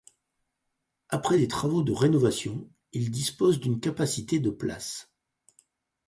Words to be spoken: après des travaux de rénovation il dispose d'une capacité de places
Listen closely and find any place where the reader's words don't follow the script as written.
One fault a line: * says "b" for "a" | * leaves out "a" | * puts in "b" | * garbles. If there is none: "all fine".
all fine